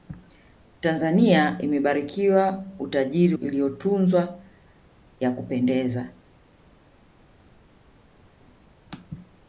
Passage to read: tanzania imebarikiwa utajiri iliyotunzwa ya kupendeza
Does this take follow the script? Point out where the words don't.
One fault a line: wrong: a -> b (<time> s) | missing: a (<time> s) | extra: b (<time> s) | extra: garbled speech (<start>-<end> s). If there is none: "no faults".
no faults